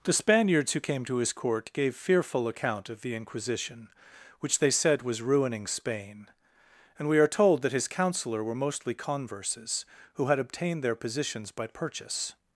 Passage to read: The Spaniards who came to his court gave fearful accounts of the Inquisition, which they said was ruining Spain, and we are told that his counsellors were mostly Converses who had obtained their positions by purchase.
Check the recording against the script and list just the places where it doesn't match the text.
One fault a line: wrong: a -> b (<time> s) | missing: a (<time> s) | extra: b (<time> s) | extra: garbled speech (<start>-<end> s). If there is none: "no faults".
wrong: accounts -> account (2.5 s)
wrong: counsellors -> counsellor (7.9 s)